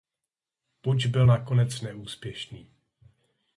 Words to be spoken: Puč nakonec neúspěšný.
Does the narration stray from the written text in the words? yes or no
yes